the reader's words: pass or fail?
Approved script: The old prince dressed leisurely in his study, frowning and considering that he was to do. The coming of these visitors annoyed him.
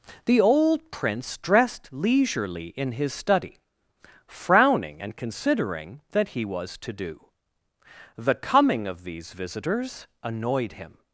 pass